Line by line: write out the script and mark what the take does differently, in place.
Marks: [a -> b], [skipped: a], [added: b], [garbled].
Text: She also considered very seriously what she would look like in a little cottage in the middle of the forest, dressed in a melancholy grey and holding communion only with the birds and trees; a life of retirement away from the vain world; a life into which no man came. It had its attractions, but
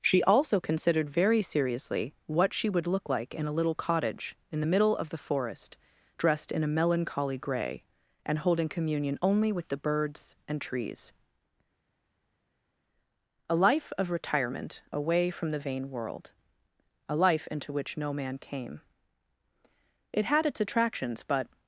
She also considered very seriously what she would look like in a little cottage in the middle of the forest, dressed in a melancholy grey and holding communion only with the birds and trees; a life of retirement away from the vain world; a life into which no man came. It had its attractions, but